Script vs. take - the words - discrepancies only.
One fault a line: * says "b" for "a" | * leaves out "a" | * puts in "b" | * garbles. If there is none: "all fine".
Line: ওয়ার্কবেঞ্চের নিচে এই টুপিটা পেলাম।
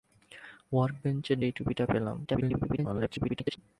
* leaves out "নিচে"
* garbles